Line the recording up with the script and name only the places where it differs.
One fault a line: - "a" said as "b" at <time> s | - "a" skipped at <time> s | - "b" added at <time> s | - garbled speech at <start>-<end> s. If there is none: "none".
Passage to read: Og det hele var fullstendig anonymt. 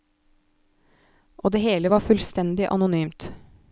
none